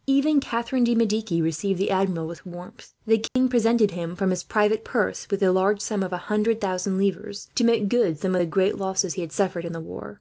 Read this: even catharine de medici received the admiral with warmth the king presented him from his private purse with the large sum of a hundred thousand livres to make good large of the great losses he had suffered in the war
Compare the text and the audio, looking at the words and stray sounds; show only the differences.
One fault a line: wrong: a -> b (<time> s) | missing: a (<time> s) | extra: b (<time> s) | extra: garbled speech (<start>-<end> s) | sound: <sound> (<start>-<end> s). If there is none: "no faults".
sound: dropout (3.3-3.4 s)
wrong: large -> some (8.2 s)